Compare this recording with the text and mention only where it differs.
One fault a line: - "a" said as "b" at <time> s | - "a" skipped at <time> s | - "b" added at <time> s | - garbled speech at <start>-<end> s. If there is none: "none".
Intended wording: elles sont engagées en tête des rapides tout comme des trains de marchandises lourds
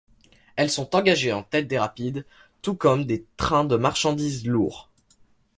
none